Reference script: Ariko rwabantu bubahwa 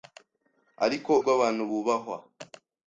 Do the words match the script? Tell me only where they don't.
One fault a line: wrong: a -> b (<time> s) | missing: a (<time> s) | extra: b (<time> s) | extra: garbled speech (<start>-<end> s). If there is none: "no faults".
no faults